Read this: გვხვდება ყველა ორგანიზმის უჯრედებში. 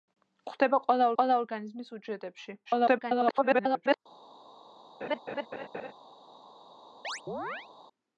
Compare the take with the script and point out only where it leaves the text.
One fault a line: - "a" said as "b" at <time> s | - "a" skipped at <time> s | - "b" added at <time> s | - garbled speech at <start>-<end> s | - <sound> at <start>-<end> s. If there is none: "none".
- "ყველა" added at 1.2 s
- garbled speech at 2.6-4.0 s
- laugh at 5.0-5.9 s
- chirp at 7.0-7.7 s